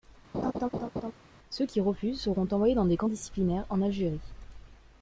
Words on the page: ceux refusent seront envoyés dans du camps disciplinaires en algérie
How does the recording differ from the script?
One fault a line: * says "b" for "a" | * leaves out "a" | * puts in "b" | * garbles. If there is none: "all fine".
* puts in "qui"
* says "des" for "du"